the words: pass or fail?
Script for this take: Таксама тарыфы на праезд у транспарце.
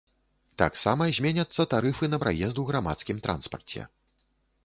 fail